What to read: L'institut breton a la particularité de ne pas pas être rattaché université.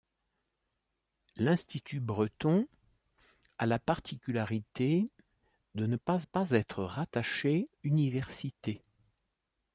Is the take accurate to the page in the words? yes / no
yes